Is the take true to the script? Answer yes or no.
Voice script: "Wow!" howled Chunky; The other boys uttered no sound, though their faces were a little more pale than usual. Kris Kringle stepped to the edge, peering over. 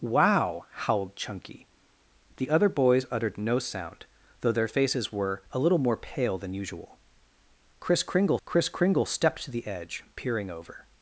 no